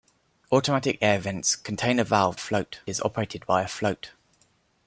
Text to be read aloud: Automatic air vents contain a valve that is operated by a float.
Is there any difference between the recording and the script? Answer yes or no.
yes